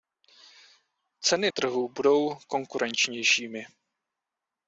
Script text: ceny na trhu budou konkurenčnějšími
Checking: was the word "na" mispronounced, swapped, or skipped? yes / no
yes